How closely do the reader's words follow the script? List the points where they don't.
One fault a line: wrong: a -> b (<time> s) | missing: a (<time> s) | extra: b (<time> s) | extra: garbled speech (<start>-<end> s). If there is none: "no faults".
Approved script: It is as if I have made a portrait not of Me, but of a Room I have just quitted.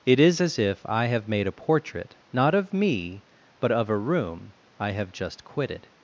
no faults